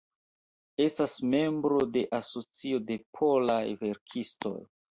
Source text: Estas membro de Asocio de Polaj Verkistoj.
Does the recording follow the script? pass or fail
pass